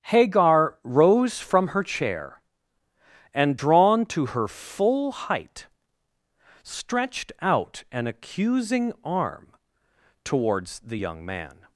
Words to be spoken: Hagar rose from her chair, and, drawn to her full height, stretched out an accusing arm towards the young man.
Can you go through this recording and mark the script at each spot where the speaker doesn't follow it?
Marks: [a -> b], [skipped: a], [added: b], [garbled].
Hagar rose from her chair, and, drawn to her full height, stretched out an accusing arm towards the young man.